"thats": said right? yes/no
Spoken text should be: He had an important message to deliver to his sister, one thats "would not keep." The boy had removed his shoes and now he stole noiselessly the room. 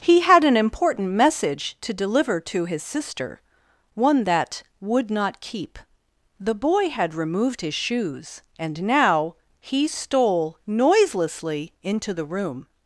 no